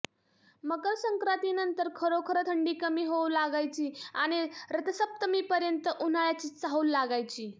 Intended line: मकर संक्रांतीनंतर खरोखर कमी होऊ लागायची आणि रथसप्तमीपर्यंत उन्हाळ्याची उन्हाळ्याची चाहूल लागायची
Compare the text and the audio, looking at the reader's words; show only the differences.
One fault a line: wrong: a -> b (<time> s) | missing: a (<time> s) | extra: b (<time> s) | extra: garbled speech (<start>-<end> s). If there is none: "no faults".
extra: थंडी (2.5 s)
missing: उन्हाळ्याची (6.5 s)